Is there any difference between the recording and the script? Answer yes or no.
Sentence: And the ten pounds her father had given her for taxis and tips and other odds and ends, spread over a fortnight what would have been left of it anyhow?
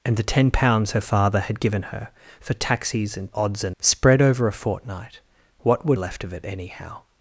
yes